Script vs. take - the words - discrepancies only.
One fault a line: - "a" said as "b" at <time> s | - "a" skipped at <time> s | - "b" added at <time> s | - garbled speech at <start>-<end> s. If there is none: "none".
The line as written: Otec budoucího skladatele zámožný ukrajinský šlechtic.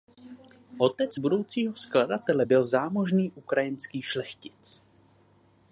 - "byl" added at 2.4 s